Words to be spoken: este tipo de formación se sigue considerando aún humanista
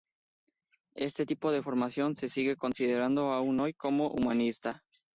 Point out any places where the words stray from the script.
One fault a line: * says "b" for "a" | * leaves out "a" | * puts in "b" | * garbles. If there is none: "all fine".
* puts in "hoy como"